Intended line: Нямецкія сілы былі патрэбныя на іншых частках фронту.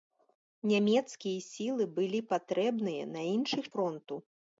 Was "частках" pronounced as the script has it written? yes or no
no